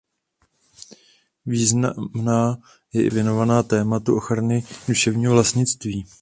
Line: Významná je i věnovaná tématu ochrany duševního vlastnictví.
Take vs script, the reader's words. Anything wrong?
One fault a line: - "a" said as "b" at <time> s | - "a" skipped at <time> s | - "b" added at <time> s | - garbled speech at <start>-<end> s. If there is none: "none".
none